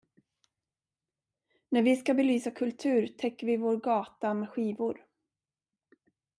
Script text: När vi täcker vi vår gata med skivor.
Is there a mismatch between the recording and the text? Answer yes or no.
yes